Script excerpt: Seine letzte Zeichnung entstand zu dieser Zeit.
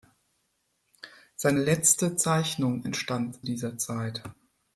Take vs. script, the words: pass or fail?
fail